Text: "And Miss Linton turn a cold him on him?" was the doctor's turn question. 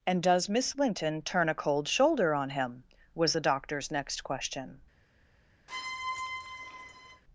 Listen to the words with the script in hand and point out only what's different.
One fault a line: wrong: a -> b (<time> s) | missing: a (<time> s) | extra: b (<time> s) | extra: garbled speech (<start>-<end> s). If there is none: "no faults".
extra: does (0.2 s)
wrong: him -> shoulder (1.9 s)
wrong: turn -> next (3.9 s)